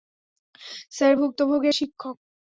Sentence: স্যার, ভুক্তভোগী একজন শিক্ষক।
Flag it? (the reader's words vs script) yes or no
yes